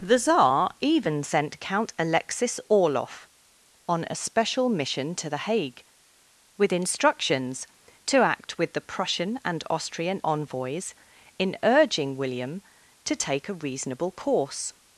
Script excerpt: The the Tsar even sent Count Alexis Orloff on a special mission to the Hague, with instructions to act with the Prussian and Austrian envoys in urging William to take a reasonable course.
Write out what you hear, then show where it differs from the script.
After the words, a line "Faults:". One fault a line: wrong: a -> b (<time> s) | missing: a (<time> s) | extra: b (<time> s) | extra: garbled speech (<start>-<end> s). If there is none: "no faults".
The Tsar even sent Count Alexis Orloff on a special mission to the Hague, with instructions to act with the Prussian and Austrian envoys in urging William to take a reasonable course.
Faults:
missing: the (0.2 s)